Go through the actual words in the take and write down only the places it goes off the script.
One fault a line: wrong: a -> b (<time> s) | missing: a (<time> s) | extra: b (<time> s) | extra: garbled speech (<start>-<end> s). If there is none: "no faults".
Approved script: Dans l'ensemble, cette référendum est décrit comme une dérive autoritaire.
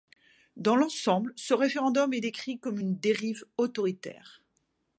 wrong: cette -> ce (1.4 s)